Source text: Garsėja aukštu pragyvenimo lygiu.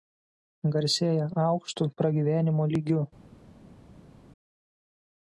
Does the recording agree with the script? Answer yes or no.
yes